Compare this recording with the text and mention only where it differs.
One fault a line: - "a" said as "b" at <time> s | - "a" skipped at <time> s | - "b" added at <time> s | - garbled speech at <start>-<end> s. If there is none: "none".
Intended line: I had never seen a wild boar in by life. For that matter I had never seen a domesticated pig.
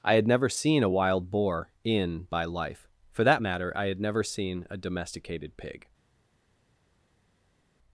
none